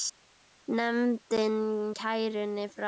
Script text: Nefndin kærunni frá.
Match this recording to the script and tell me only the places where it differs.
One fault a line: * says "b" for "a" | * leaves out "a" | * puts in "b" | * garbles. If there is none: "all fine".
all fine